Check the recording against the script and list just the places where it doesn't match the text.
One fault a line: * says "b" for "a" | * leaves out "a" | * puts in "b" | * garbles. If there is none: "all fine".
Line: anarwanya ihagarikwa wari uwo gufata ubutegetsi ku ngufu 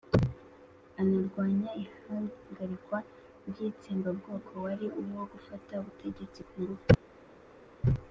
* puts in "ry'itsembabwoko"